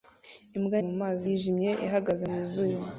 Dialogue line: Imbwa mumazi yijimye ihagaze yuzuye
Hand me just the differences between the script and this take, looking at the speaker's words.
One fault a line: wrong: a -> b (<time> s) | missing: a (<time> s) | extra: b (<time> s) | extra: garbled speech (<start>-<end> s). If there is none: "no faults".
no faults